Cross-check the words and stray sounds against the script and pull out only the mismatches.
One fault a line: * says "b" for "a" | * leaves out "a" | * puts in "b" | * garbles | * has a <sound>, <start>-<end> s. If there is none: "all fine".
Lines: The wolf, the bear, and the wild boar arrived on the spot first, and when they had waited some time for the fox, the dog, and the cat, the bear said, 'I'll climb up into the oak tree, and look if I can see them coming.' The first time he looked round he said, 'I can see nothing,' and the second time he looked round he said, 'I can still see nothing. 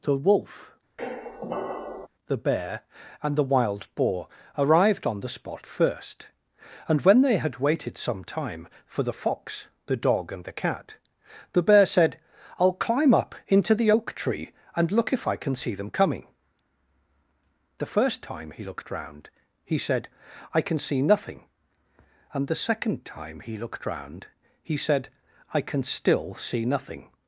* has a squeak, 1.0-2.1 s